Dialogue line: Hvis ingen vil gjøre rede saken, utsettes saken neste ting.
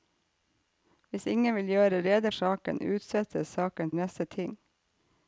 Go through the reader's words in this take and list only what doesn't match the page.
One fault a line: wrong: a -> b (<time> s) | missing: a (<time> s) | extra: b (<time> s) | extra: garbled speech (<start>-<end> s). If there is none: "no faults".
no faults